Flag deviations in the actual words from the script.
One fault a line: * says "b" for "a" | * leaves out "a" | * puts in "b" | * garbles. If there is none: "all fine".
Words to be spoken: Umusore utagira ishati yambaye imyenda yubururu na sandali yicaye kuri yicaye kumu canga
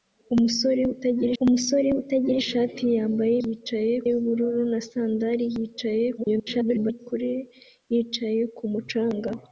* puts in "umusore utagira"
* says "yicaye" for "imyenda"
* garbles